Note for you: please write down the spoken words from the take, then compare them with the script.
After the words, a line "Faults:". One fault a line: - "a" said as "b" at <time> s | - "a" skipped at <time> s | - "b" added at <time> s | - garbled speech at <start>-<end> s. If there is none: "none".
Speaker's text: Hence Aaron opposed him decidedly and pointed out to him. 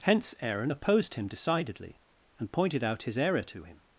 Hence Aaron opposed him decidedly and pointed out his error to him.
Faults:
- "his error" added at 3.0 s